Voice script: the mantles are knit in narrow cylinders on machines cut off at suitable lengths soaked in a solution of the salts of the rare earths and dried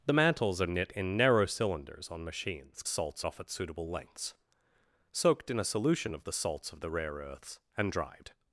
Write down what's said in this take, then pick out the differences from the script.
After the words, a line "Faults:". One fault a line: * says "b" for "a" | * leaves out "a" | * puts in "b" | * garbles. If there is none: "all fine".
the mantles are knit in narrow cylinders on machines salts off at suitable lengths soaked in a solution of the salts of the rare earths and dried
Faults:
* says "salts" for "cut"